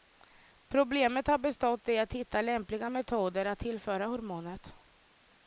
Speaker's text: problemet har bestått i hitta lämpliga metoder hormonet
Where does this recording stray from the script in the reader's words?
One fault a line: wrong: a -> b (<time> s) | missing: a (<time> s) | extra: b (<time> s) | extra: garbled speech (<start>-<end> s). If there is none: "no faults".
extra: att (2.0 s)
extra: att tillföra (3.5 s)